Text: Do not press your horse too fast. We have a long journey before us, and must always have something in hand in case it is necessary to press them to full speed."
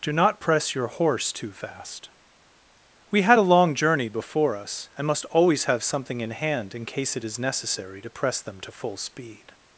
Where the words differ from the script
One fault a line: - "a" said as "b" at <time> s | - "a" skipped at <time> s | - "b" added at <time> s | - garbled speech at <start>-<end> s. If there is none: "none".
- "have" said as "had" at 3.2 s